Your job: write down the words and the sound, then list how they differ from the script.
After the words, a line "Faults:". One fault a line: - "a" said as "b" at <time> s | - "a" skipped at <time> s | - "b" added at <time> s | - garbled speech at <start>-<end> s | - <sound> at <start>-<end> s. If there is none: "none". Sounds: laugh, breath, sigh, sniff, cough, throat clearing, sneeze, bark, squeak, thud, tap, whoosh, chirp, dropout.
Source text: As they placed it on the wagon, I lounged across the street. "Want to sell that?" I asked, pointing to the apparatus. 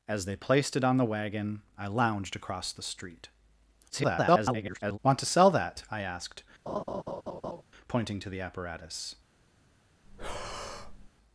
As they placed it on the wagon, I lounged across the street. [garbled] "Want to sell that?" I asked, pointing to the apparatus.
Faults:
- garbled speech at 3.9-5.0 s
- laugh at 6.7-7.6 s
- breath at 10.0-11.1 s